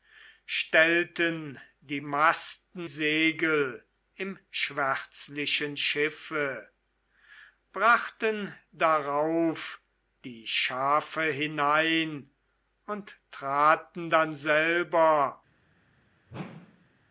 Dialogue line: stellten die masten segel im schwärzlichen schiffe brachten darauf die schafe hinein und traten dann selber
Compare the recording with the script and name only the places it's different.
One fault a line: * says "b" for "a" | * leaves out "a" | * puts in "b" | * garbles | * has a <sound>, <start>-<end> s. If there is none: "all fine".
* has a whoosh, 16.3-17.0 s